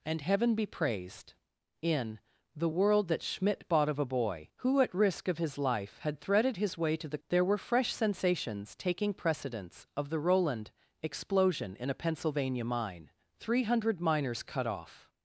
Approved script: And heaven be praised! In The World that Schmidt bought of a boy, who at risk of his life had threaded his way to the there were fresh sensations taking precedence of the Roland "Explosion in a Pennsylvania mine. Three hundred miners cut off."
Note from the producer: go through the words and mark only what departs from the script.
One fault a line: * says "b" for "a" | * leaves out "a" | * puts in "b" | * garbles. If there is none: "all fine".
all fine